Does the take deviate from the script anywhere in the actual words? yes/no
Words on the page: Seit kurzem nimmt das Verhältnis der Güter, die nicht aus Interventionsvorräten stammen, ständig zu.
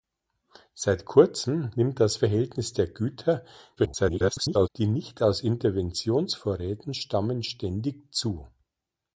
yes